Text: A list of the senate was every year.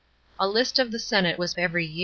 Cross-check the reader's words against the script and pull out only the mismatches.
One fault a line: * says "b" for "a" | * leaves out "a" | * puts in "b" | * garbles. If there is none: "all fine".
all fine